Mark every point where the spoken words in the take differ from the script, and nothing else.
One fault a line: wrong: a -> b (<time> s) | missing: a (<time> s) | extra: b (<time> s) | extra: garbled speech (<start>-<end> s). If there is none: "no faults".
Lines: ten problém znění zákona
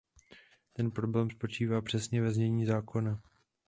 extra: spočívá přesně ve (1.3 s)